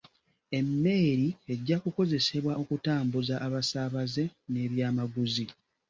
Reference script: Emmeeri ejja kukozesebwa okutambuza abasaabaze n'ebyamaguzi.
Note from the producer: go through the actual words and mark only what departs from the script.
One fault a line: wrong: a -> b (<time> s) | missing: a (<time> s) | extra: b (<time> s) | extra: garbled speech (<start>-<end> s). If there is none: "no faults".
no faults